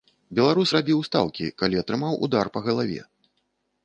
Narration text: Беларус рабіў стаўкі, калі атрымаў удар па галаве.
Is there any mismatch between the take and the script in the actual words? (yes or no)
no